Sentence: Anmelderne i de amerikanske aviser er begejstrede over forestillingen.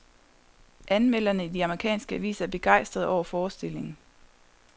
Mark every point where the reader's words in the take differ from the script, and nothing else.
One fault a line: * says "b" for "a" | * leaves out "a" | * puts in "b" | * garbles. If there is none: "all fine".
all fine